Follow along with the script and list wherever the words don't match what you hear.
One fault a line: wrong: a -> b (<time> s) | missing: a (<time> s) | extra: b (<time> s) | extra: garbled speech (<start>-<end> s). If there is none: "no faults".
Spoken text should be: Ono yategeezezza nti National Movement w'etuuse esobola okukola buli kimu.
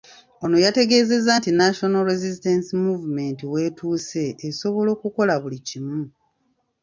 extra: Resistance (2.1 s)